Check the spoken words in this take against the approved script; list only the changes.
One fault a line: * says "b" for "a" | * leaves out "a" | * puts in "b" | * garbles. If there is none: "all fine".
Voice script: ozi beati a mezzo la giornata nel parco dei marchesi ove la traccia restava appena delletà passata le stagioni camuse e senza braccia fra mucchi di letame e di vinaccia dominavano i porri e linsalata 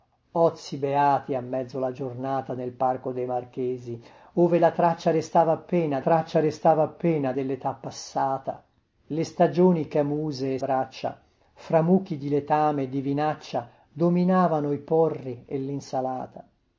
* puts in "traccia restava appena"
* leaves out "senza"